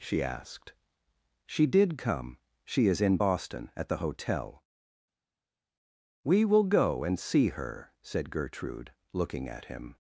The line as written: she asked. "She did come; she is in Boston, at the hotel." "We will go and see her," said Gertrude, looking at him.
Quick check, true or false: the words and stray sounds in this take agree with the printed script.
true